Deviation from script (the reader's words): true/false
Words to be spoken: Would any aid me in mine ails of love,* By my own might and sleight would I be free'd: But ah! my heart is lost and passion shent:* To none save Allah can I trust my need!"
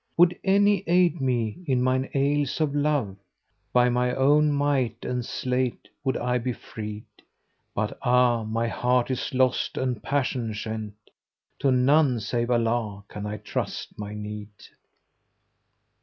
false